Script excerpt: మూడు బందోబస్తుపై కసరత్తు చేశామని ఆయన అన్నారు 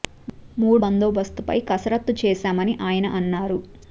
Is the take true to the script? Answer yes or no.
yes